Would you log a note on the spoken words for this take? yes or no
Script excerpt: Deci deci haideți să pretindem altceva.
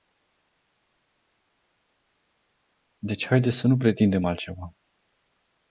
yes